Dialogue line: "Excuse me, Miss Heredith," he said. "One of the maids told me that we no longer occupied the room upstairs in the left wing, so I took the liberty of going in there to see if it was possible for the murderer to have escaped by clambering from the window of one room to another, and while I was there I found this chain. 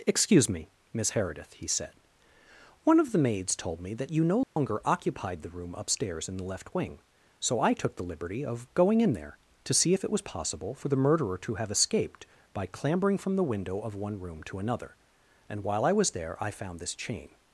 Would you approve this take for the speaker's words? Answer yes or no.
no